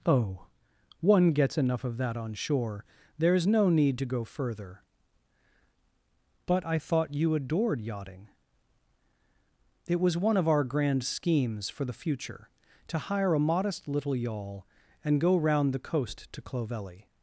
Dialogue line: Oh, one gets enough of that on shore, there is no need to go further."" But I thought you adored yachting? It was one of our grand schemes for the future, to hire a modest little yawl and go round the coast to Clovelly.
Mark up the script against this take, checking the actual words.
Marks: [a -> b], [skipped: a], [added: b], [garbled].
Oh, one gets enough of that on shore, there is no need to go further."" But I thought you adored yachting? It was one of our grand schemes for the future, to hire a modest little yawl and go round the coast to Clovelly.